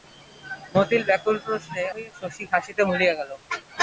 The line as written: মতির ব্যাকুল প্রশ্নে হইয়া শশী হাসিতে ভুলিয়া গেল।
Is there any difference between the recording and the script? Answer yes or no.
no